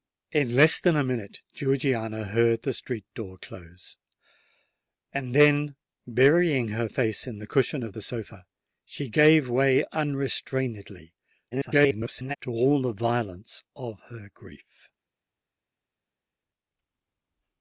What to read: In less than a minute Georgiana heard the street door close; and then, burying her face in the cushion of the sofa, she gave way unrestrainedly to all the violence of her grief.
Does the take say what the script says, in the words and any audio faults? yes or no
no